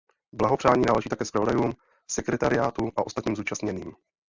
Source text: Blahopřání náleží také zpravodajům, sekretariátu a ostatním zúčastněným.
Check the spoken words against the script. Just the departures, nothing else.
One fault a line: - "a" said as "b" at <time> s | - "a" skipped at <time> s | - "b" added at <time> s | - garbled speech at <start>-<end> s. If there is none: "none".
none